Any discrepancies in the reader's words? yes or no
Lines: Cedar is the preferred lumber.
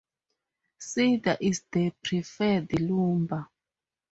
no